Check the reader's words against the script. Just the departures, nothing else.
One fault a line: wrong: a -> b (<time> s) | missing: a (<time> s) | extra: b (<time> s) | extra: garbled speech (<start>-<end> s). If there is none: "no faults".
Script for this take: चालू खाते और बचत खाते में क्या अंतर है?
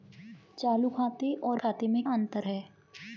missing: बचत (1.6 s)
missing: क्या (2.0 s)